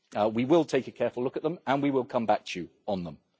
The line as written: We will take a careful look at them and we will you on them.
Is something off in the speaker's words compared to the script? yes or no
yes